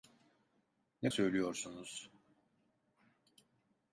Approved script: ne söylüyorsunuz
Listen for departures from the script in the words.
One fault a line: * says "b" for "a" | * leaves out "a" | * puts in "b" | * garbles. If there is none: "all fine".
all fine